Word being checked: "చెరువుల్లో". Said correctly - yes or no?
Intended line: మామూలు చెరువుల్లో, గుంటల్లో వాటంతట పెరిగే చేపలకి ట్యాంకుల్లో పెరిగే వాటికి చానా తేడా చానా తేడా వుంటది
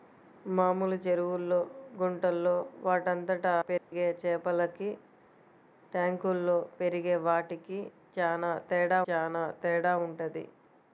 yes